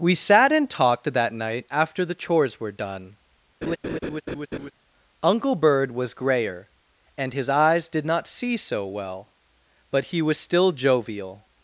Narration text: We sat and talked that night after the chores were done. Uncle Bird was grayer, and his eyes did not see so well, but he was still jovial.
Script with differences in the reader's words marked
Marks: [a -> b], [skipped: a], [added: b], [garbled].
We sat and talked that night after the chores were done. Uncle Bird was grayer, and his eyes did not see so well, but he was still jovial.